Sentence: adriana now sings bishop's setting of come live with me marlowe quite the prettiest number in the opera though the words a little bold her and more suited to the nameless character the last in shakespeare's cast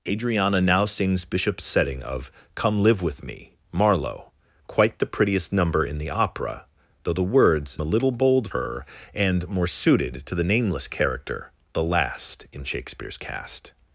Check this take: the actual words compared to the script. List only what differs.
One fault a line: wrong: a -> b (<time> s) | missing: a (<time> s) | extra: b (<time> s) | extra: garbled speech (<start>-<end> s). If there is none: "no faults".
no faults